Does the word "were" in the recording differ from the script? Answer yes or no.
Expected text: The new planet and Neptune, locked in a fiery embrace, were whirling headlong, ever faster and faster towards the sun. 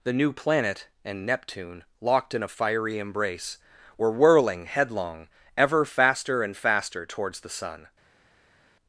no